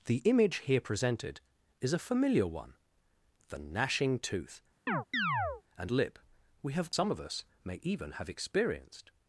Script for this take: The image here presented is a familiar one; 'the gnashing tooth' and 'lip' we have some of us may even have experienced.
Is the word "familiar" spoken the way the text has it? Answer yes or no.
yes